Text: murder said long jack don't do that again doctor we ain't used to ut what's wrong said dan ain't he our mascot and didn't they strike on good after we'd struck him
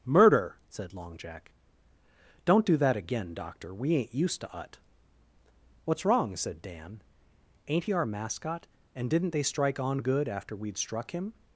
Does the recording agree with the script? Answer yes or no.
yes